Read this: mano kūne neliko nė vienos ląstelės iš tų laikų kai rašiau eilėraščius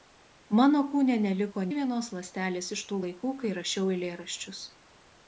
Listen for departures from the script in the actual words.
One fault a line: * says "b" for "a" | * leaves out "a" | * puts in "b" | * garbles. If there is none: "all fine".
* leaves out "nė"